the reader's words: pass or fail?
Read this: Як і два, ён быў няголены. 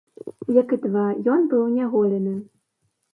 pass